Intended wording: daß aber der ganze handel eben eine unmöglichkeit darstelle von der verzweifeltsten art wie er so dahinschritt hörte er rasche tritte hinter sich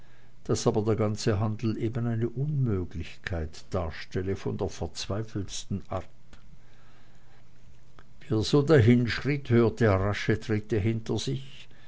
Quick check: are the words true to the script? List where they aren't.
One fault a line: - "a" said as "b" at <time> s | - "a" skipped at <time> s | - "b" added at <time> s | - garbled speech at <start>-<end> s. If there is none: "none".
none